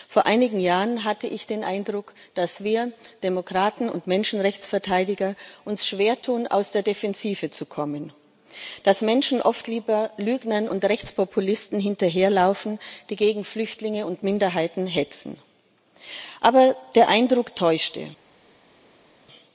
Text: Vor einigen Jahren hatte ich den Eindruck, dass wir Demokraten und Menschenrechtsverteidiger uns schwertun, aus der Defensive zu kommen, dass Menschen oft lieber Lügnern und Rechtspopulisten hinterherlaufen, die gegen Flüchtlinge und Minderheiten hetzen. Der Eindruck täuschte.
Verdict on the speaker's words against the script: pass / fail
fail